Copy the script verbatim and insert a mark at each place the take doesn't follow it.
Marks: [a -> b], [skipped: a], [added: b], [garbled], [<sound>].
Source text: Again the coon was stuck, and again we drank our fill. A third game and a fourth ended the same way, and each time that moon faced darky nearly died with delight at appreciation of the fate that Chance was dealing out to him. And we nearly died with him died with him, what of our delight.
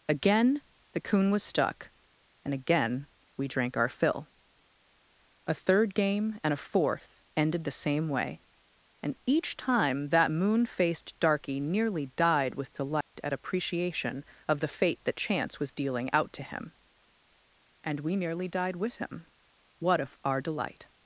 Again the coon was stuck, and again we drank our fill. A third game and a fourth ended the same way, and each time that moon faced darky nearly died with delight [dropout] at appreciation of the fate that Chance was dealing out to him. And we nearly died with him [skipped: died with him,] what of our delight.